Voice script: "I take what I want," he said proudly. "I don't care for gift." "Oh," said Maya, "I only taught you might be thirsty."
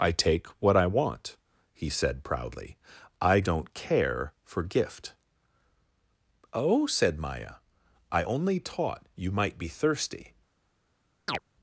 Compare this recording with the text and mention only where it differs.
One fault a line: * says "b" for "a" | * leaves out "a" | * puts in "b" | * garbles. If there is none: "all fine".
all fine